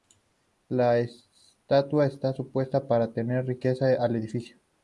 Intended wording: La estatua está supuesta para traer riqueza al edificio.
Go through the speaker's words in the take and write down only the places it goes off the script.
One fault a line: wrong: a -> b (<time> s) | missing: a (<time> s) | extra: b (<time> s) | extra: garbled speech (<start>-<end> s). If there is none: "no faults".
no faults